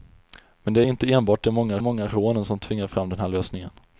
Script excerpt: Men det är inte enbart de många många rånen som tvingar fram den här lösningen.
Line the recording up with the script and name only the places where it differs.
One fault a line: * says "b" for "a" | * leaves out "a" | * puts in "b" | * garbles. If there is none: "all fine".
all fine